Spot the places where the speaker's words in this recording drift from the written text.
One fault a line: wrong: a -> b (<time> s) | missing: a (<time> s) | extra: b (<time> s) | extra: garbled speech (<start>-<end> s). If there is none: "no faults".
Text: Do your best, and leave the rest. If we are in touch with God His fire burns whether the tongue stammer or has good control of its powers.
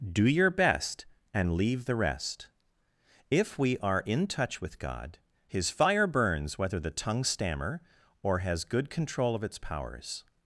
no faults